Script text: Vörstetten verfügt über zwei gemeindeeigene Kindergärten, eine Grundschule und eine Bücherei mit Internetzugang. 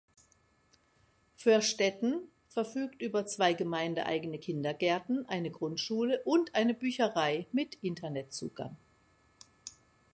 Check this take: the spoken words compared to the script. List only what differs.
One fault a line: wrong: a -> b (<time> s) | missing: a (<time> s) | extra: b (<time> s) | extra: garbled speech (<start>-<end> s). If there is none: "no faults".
no faults